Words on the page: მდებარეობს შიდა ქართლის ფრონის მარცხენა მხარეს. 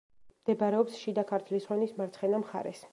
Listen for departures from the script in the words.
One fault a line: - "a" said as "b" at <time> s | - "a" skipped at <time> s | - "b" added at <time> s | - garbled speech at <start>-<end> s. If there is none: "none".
none